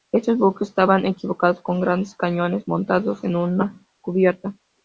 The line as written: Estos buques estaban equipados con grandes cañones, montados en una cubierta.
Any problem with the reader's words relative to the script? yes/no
no